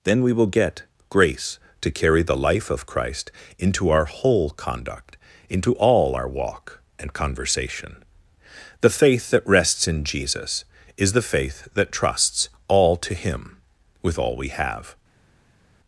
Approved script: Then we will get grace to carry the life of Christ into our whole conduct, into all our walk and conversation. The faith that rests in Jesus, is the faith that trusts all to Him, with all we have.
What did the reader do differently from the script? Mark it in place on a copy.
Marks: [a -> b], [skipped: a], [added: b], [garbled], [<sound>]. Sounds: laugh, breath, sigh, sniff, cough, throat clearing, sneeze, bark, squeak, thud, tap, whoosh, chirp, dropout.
Then we will get grace to carry the life of Christ into our whole conduct, into all our walk and conversation. The faith that rests in Jesus, is the faith that trusts all to Him, with all we have.